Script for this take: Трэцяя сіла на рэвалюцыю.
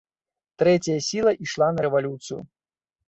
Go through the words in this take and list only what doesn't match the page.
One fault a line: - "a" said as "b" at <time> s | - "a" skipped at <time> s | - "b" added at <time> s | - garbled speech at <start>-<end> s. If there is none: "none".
- "ішла" added at 1.5 s